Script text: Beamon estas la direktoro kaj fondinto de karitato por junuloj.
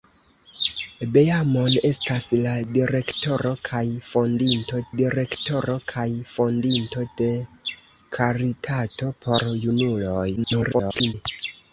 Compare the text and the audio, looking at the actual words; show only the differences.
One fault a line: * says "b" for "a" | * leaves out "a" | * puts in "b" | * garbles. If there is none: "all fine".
* puts in "direktoro kaj fondinto"
* garbles